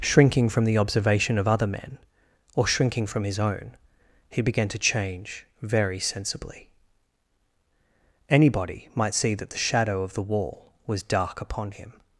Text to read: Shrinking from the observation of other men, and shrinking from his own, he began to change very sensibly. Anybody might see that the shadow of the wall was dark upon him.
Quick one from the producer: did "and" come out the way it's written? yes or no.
no